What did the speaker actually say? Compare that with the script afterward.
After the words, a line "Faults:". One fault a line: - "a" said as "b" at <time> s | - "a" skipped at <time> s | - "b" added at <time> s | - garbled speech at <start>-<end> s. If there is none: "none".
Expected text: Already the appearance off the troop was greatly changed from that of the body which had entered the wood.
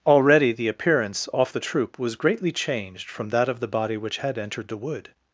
Already the appearance off the troop was greatly changed from that of the body which had entered the wood.
Faults:
none